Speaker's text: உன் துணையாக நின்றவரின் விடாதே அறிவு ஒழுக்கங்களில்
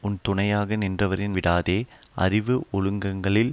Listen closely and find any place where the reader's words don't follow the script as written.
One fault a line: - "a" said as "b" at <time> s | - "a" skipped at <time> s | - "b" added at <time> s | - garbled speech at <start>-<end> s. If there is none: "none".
none